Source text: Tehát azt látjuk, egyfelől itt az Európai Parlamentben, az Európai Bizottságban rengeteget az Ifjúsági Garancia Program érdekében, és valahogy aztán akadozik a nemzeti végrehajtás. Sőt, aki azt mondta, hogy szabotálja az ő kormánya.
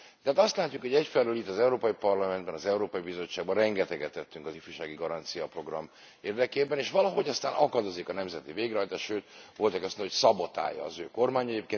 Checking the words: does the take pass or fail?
fail